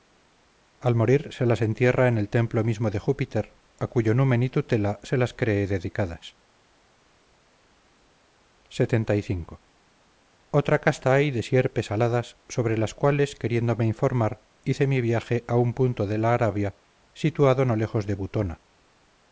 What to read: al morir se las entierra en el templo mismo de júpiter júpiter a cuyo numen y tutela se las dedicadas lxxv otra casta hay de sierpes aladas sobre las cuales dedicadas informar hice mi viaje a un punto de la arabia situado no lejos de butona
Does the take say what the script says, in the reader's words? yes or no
no